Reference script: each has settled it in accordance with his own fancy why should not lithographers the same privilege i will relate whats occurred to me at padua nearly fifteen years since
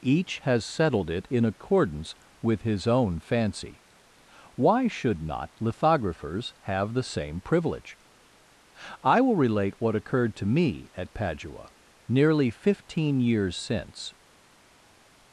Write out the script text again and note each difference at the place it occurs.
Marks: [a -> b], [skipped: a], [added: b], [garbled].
each has settled it in accordance with his own fancy why should not lithographers [added: have] the same privilege i will relate [whats -> what] occurred to me at padua nearly fifteen years since